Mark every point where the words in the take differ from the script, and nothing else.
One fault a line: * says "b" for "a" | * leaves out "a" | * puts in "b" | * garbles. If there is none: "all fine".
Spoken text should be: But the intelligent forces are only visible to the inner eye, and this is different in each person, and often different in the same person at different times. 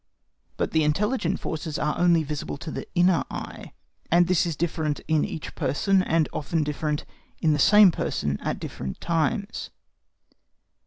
all fine